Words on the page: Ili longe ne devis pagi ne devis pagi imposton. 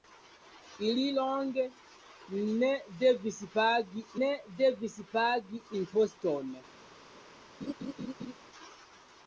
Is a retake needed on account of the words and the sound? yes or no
yes